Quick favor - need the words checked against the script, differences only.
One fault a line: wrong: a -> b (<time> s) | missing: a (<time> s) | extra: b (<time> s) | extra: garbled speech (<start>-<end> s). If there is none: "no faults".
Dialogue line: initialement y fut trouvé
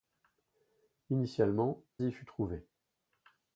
no faults